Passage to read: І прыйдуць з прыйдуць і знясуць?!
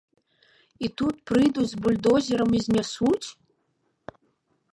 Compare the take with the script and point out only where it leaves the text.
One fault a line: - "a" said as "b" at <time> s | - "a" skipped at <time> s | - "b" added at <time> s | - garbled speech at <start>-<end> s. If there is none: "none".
- "тут" added at 1.0 s
- "прыйдуць" said as "бульдозерам" at 1.9 s